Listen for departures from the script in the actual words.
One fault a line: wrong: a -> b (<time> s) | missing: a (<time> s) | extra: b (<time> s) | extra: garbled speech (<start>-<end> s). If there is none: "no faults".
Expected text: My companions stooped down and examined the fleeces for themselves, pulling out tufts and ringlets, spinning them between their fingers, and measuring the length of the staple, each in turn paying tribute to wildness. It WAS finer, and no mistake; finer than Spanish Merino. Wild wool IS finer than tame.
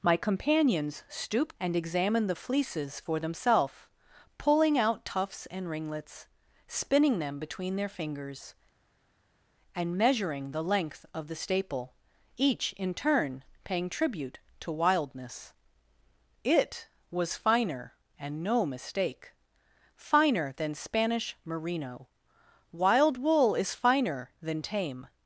missing: down (1.6 s)